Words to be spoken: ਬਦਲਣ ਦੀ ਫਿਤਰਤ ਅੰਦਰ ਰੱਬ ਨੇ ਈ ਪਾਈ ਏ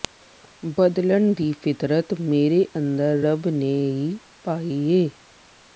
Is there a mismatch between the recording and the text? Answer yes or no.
yes